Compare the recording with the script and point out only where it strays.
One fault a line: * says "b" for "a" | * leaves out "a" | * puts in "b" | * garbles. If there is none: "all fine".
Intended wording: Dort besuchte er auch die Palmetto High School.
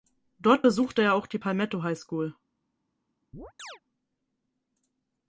all fine